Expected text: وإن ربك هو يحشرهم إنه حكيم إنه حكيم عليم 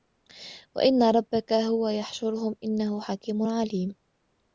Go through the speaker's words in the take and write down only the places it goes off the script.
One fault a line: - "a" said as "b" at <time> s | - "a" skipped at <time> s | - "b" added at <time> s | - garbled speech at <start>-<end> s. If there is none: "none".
- "إنه حكيم" skipped at 3.4 s